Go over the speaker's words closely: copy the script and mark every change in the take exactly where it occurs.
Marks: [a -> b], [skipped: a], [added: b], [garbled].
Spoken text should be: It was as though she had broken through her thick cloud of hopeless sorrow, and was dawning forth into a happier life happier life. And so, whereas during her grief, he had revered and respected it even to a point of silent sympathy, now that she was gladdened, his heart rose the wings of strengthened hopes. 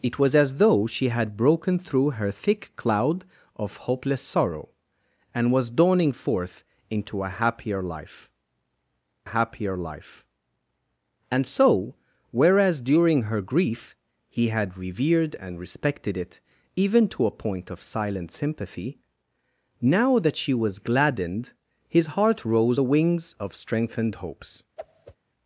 It was as though she had broken through her thick cloud of hopeless sorrow, and was dawning forth into a happier life happier life. And so, whereas during her grief, he had revered and respected it even to a point of silent sympathy, now that she was gladdened, his heart rose the wings of strengthened hopes.